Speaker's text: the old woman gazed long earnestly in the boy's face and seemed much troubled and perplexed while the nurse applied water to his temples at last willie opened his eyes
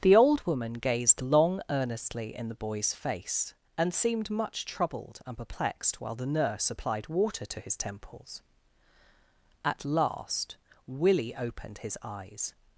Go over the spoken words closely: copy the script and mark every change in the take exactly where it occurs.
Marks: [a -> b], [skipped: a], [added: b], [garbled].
the old woman gazed long earnestly in the boy's face and seemed much troubled and perplexed while the nurse applied water to his temples at last willie opened his eyes